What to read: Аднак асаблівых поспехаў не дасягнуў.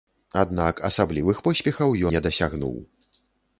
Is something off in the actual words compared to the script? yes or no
no